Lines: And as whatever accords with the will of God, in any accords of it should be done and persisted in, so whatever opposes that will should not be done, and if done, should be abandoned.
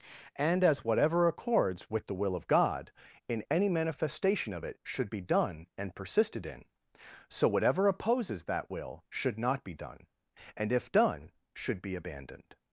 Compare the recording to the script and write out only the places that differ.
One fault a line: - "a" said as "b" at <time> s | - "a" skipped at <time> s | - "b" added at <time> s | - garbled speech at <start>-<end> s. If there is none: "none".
- "accords" said as "manifestation" at 3.7 s